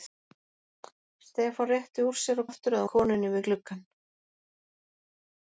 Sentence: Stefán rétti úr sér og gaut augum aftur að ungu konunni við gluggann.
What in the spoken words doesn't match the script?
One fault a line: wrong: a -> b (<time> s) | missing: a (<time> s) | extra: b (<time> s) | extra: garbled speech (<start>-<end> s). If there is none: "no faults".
missing: gaut augum (2.5 s)
missing: ungu (2.9 s)